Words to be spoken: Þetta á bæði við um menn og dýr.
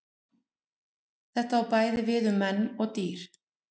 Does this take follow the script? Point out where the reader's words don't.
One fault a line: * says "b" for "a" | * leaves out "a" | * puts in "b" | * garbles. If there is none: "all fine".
all fine